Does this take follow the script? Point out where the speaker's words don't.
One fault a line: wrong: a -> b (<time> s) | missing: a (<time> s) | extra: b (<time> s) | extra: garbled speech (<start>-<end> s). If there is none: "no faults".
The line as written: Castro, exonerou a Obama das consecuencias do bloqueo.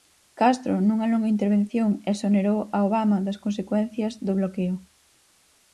extra: nunha longa intervención (0.9 s)